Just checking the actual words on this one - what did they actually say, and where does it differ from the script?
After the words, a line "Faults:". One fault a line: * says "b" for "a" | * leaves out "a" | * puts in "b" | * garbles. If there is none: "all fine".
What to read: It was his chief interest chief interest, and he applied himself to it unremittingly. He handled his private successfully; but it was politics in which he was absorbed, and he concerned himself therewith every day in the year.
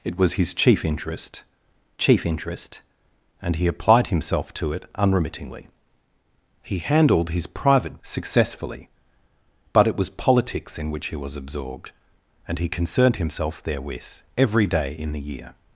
It was his chief interest chief interest, and he applied himself to it unremittingly. He handled his private successfully; but it was politics in which he was absorbed, and he concerned himself therewith every day in the year.
Faults:
all fine